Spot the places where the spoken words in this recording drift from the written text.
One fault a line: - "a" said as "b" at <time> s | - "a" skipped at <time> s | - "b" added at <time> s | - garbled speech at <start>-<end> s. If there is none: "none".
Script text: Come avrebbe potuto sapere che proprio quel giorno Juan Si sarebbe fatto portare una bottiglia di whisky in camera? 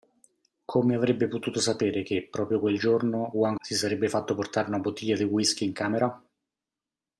none